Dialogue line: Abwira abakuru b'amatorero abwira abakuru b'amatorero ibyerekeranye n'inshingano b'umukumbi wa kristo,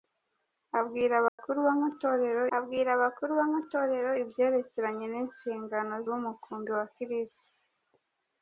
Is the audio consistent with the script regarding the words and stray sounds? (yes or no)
no